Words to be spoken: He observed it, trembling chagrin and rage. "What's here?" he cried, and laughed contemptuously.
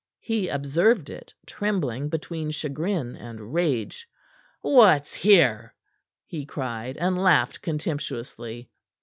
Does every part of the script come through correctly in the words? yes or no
no